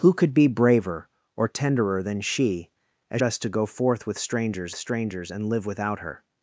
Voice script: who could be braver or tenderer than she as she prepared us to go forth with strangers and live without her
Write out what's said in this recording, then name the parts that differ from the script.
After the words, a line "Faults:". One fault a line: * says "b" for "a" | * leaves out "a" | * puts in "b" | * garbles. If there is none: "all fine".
who could be braver or tenderer than she as us to go forth with strangers strangers and live without her
Faults:
* leaves out "she prepared"
* puts in "strangers"